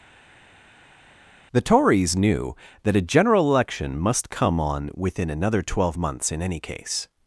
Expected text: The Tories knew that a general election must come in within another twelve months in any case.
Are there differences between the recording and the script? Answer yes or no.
yes